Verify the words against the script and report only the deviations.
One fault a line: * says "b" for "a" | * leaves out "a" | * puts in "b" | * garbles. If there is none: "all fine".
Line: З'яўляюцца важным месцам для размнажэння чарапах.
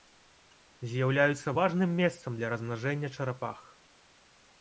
all fine